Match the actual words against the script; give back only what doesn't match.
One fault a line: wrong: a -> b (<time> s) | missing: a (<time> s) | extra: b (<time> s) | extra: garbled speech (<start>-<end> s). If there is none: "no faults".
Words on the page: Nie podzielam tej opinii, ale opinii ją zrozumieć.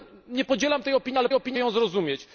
no faults